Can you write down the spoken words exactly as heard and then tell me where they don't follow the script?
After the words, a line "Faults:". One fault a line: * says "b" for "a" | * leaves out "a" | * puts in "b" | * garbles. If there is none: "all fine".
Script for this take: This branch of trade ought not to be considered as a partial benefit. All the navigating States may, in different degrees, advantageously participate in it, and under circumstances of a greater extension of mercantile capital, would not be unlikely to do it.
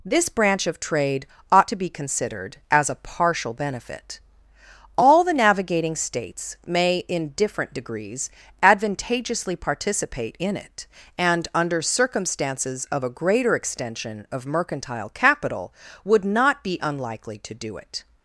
This branch of trade ought to be considered as a partial benefit. All the navigating States may, in different degrees, advantageously participate in it, and under circumstances of a greater extension of mercantile capital, would not be unlikely to do it.
Faults:
* leaves out "not"